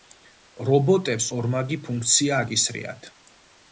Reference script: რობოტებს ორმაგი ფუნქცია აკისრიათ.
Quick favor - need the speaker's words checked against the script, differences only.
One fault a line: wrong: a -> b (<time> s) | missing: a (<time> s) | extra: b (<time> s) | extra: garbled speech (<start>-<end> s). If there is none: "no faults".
no faults